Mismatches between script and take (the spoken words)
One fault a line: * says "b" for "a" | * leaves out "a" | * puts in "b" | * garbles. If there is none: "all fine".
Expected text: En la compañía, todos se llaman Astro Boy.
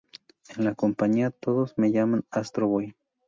* says "me" for "se"